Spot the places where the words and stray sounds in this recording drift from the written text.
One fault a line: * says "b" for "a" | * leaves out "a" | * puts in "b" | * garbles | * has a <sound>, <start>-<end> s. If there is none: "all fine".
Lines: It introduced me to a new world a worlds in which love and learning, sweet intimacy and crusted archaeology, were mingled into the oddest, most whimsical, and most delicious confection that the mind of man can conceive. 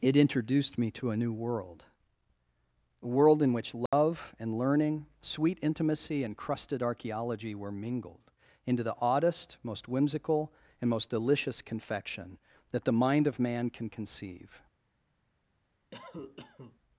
* says "world" for "worlds"
* has a dropout, 3.9-3.9 s
* has a cough, 15.9-16.8 s